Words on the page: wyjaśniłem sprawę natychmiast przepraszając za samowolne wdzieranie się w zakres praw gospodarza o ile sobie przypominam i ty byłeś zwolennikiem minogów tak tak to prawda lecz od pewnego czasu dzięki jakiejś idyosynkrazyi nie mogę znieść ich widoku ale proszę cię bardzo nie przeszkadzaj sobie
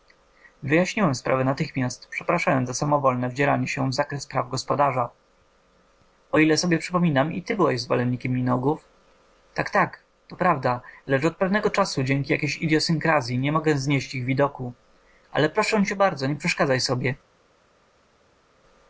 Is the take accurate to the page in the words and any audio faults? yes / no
yes